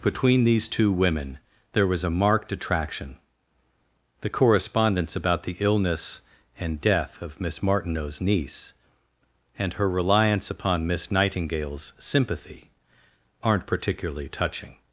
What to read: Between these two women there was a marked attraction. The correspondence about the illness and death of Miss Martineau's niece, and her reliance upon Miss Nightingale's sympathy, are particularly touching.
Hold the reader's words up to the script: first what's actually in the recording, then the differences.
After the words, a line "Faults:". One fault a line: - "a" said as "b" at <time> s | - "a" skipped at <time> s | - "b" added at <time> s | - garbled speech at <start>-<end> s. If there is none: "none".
Between these two women there was a marked attraction. The correspondence about the illness and death of Miss Martineau's niece, and her reliance upon Miss Nightingale's sympathy, aren't particularly touching.
Faults:
- "are" said as "aren't" at 13.4 s